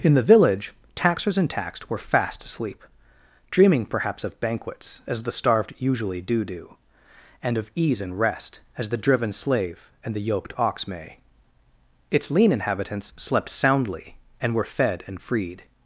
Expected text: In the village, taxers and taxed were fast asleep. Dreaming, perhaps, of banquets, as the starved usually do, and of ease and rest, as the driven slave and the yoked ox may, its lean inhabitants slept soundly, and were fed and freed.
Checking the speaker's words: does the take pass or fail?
fail